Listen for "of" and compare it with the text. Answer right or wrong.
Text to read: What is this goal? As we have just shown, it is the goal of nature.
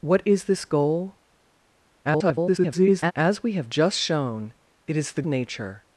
wrong